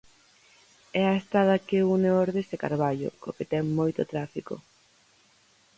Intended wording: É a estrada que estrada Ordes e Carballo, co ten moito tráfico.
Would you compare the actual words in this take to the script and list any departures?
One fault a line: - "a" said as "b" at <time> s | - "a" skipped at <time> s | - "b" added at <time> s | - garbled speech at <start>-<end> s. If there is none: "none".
- "estrada" said as "une" at 1.9 s
- "que" added at 3.4 s